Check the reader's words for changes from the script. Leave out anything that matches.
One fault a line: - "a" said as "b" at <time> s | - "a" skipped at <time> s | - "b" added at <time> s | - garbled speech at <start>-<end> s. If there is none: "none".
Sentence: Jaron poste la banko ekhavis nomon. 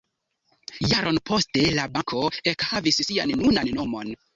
- "sian nunan" added at 3.1 s